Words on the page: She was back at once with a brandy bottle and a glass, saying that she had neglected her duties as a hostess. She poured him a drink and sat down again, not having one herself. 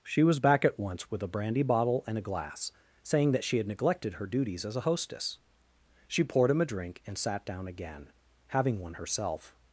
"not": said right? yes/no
no